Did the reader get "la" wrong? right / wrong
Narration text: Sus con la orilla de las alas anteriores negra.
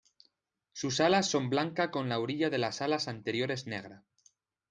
right